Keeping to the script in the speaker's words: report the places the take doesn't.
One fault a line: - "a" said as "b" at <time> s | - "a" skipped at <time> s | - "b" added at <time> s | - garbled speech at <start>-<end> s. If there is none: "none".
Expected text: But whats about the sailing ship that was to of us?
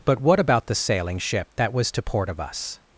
- "whats" said as "what" at 0.2 s
- "port" added at 2.0 s